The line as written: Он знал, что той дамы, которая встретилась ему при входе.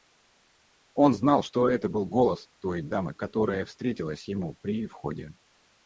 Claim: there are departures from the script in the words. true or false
true